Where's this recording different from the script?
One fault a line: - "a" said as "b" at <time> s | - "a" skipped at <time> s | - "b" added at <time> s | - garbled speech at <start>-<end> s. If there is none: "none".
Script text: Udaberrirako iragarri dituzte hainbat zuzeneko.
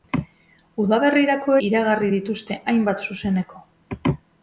none